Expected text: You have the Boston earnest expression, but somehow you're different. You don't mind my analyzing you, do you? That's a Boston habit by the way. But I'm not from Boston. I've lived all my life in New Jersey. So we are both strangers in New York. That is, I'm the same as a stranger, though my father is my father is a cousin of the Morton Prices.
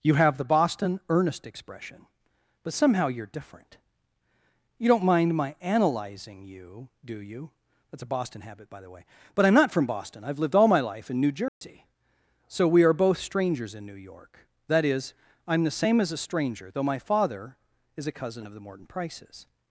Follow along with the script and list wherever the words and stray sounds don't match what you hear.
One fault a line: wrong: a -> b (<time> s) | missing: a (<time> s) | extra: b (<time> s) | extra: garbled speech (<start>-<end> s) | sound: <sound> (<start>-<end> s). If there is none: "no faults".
sound: dropout (11.5-11.6 s)
missing: my father is (18.1 s)